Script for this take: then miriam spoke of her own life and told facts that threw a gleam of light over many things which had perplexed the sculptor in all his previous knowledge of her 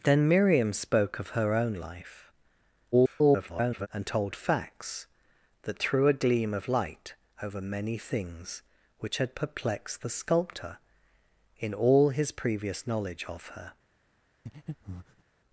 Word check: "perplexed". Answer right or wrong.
right